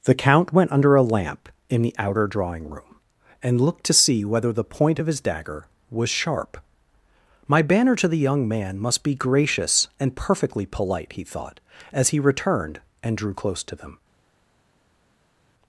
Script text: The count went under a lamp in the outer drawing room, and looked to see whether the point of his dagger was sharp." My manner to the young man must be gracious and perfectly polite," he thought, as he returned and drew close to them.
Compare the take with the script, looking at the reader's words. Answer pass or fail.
fail